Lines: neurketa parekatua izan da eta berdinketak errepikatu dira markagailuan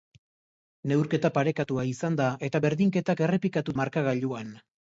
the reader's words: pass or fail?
fail